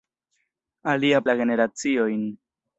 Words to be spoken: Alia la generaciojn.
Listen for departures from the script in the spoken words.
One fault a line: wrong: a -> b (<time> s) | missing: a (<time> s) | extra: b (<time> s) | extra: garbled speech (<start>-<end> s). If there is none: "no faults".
no faults